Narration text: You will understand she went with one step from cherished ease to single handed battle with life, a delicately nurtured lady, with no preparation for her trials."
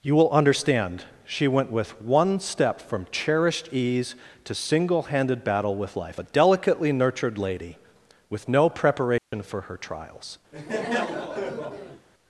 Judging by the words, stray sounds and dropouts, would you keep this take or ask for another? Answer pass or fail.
fail